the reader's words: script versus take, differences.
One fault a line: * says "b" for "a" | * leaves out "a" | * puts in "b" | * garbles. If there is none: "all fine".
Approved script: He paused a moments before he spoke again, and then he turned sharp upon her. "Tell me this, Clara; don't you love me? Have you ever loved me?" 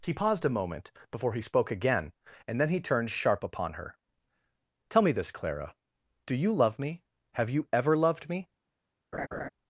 * says "moment" for "moments"
* says "do" for "don't"